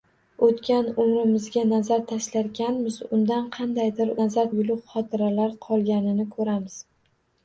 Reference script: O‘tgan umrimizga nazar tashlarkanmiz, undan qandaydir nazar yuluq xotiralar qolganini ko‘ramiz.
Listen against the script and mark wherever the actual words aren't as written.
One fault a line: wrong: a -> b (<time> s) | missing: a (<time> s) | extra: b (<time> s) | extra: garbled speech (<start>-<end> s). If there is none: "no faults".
no faults